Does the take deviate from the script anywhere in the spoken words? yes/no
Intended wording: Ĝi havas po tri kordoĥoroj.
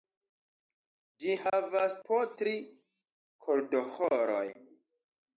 no